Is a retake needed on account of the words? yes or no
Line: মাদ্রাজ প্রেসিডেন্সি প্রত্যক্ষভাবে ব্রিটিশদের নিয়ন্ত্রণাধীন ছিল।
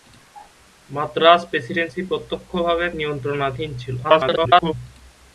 yes